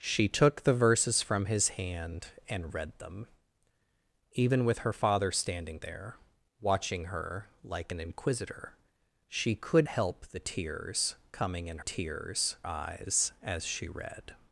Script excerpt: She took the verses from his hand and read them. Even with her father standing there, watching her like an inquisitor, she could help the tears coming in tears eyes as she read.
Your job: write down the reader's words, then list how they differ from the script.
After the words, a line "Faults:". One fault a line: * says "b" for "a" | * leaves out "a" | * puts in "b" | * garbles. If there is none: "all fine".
She took the verses from his hand and read them. Even with her father standing there, watching her like an inquisitor, she could help the tears coming in tears eyes as she read.
Faults:
all fine